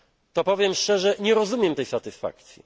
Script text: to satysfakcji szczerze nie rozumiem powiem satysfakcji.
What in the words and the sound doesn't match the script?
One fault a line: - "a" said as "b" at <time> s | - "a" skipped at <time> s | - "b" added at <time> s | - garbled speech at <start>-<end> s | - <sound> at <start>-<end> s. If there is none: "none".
- "satysfakcji" said as "powiem" at 0.4 s
- "powiem" said as "tej" at 1.7 s